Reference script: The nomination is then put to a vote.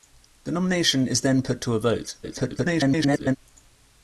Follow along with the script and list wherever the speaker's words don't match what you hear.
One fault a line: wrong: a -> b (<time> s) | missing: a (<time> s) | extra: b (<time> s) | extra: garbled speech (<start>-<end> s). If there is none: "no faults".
extra: garbled speech (2.2-3.4 s)